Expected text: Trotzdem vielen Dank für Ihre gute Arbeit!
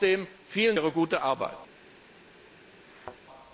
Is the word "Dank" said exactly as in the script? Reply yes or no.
no